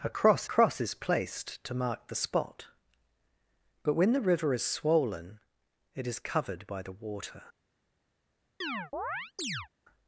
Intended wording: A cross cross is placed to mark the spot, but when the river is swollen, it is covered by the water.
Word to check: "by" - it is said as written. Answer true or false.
true